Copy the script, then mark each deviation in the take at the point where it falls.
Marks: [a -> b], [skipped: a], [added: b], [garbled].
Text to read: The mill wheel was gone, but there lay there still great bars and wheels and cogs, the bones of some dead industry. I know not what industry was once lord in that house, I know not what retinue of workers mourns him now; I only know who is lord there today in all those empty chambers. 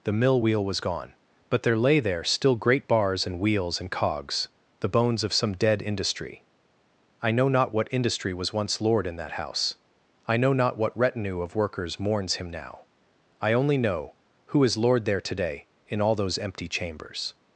The mill wheel was gone, but there lay there still great bars and wheels and cogs, the bones of some dead industry. I know not what industry was once lord in that house, I know not what retinue of workers mourns him now; I only know who is lord there today in all those empty chambers.